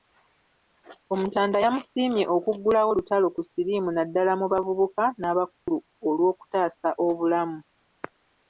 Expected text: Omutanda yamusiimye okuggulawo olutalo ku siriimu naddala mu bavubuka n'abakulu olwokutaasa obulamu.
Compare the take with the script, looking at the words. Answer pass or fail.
pass